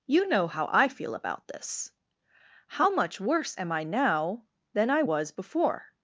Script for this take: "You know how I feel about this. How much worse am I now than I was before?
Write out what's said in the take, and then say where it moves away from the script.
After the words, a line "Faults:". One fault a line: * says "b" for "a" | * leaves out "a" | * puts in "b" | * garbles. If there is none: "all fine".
"You know how I feel about this. How much worse am I now than I was before?
Faults:
all fine